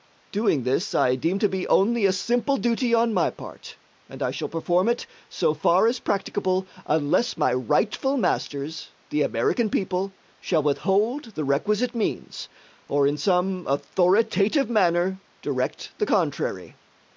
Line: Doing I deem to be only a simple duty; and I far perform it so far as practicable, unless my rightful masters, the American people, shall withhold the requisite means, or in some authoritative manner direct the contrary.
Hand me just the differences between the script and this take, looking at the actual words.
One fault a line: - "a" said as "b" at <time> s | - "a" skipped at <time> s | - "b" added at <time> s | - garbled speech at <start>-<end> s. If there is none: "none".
- "this" added at 0.6 s
- "on my part" added at 2.9 s
- "far" said as "shall" at 4.3 s